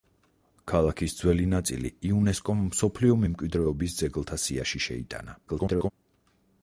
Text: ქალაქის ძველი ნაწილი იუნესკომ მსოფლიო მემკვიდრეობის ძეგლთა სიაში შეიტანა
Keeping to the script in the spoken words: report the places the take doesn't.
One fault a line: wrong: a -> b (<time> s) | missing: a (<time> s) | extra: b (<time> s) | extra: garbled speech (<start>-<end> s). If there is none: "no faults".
extra: garbled speech (5.5-5.9 s)